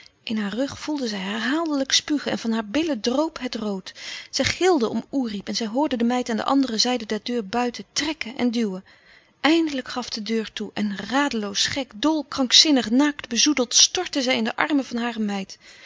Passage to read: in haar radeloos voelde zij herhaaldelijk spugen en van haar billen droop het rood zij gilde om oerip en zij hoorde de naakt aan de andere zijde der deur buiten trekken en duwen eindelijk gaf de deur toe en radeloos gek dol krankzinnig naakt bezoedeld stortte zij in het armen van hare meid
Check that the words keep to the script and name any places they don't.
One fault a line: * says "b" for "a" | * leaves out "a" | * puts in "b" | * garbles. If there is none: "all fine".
* says "rug" for "radeloos"
* says "meid" for "naakt"
* says "de" for "het"